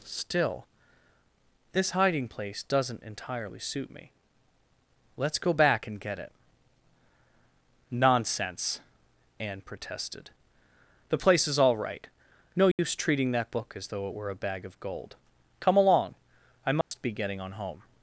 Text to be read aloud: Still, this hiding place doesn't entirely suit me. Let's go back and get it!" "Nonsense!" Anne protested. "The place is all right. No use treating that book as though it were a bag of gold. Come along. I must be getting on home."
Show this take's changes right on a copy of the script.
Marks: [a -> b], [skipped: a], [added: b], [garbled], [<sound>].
Still, this hiding place doesn't entirely suit me. Let's go back and get it!" "Nonsense!" Anne protested. "The place is all right. No use [dropout] treating that book as though it were a bag of gold. Come along. I must [dropout] be getting on home."